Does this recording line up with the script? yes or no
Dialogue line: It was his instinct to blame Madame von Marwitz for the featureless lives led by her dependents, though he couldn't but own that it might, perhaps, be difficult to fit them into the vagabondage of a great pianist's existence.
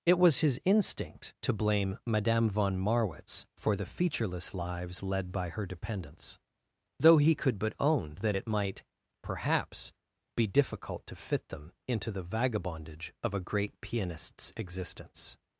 no